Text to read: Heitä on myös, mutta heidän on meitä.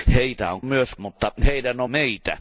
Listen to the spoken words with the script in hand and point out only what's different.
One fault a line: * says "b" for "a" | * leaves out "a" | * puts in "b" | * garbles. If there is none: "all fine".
all fine